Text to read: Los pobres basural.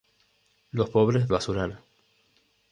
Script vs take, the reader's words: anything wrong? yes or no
no